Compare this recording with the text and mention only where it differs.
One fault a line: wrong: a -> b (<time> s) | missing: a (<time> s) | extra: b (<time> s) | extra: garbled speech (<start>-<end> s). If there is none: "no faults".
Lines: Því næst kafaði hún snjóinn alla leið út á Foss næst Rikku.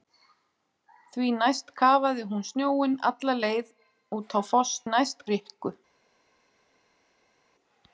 no faults